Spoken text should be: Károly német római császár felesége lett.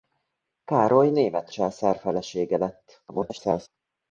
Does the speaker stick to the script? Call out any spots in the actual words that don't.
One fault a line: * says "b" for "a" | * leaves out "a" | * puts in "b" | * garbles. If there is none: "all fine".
* leaves out "római"
* garbles